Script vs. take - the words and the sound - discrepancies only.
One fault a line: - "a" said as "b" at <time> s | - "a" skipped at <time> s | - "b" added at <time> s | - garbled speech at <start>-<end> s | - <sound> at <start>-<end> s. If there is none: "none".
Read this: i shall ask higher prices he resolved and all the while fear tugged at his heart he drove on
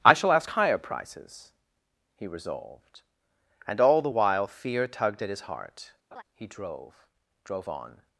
- laugh at 6.1-6.2 s
- "drove" added at 7.4 s